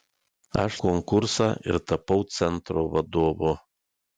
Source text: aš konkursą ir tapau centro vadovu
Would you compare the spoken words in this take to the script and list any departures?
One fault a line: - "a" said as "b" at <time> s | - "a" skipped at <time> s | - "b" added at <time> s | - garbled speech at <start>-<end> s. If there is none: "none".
none